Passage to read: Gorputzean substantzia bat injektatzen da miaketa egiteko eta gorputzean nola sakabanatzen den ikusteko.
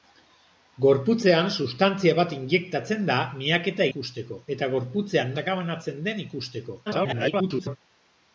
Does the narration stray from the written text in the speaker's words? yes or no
yes